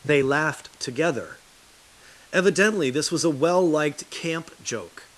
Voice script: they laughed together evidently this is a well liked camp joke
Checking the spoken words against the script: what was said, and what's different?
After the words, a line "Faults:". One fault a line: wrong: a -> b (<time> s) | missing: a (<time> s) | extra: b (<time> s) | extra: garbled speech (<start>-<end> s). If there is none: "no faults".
they laughed together evidently this was a well liked camp joke
Faults:
wrong: is -> was (3.1 s)